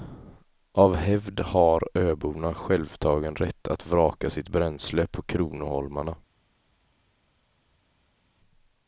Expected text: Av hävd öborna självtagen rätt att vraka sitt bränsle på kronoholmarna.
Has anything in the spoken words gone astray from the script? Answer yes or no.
yes